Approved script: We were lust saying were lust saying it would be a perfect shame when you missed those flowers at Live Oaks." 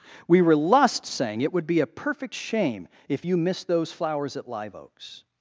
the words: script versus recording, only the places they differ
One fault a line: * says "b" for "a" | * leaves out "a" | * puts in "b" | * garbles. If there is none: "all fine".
* leaves out "were lust saying"
* says "if" for "when"